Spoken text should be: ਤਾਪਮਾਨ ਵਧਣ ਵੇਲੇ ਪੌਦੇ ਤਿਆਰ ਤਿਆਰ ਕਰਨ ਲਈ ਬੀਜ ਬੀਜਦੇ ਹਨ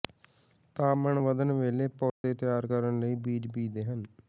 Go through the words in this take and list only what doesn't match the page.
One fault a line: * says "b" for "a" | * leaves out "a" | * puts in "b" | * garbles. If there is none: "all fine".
* leaves out "ਤਿਆਰ"